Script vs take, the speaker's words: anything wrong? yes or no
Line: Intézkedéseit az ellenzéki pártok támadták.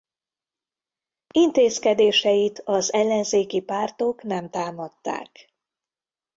yes